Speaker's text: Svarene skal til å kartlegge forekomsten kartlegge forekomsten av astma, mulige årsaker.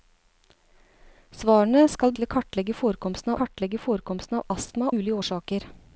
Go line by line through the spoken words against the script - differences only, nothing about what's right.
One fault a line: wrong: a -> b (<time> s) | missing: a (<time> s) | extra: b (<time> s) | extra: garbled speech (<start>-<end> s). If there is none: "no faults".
no faults